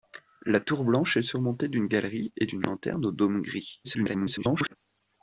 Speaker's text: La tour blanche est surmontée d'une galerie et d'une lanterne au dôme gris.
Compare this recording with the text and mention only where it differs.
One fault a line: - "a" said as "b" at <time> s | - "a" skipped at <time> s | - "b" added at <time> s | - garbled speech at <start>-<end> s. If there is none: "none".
- garbled speech at 3.8-4.8 s